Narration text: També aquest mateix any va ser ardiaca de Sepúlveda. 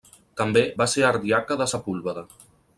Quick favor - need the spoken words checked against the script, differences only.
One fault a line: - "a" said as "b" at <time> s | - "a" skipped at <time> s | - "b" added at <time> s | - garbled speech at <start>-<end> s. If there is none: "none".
- "aquest mateix any" skipped at 0.6 s